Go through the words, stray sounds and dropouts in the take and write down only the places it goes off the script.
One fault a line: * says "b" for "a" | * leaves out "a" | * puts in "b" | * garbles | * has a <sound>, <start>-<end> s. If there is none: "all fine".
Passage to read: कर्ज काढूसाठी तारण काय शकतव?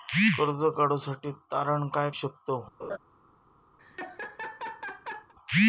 * has a laugh, 2.8-3.0 s
* has a laugh, 3.8-5.3 s